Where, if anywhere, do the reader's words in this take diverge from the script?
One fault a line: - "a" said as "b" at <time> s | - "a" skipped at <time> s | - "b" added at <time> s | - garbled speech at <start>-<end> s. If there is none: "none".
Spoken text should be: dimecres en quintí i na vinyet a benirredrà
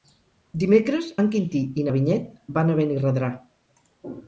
- "van" added at 2.6 s